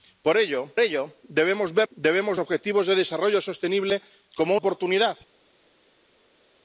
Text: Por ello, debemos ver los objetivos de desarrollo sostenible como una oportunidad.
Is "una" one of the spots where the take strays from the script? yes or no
yes